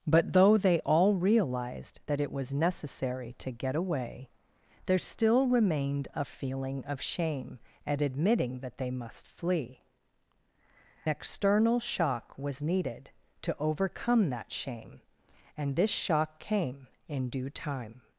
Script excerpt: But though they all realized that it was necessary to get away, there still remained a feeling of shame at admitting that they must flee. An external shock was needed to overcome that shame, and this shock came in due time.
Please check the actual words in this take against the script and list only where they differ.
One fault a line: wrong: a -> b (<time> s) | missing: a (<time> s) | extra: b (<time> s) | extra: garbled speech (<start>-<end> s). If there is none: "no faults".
missing: An (9.8 s)